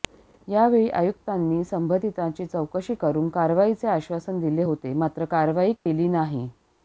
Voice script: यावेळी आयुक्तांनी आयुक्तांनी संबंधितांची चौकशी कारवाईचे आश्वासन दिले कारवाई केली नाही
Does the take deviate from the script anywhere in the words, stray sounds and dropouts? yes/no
yes